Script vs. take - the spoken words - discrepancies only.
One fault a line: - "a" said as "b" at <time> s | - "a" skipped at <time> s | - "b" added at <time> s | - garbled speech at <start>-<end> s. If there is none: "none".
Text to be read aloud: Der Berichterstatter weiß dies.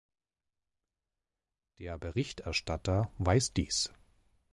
none